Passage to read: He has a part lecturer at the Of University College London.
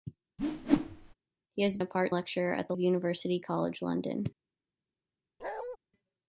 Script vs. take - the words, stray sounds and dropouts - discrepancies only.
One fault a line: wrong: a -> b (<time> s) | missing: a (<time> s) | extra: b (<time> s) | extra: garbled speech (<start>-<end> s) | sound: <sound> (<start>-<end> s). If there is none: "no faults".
sound: whoosh (0.4-1.1 s)
sound: bark (5.4-5.8 s)